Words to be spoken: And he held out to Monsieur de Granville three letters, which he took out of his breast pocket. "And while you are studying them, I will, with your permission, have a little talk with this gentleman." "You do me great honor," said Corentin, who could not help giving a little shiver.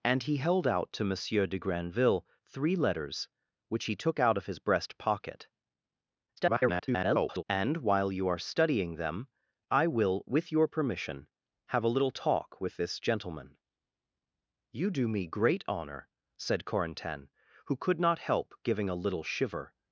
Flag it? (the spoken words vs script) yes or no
yes